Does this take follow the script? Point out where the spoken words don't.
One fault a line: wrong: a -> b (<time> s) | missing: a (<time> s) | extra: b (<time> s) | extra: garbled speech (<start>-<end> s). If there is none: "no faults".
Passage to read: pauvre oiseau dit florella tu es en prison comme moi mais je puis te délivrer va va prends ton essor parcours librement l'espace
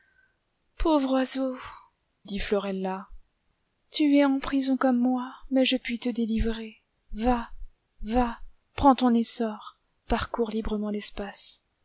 no faults